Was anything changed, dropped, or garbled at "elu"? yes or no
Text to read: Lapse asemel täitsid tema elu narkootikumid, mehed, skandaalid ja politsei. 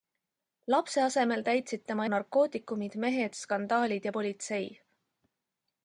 yes